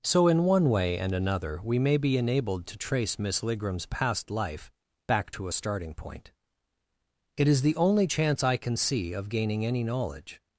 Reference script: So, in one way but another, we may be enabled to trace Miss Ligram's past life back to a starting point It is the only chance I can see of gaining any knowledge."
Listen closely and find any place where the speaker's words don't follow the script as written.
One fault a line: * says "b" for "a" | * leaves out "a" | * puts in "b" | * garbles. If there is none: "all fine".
* says "and" for "but"